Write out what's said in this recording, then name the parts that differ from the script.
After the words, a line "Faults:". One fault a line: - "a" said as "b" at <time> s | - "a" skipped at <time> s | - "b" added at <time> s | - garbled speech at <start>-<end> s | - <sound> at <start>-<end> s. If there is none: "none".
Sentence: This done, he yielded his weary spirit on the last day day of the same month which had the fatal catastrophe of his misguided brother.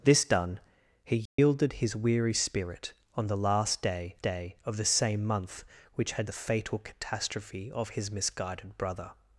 This done, he yielded his weary spirit on the last day day of the same month which had the fatal catastrophe of his misguided brother.
Faults:
- dropout at 1.3-1.4 s